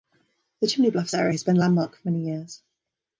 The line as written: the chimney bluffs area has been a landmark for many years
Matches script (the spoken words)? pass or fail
pass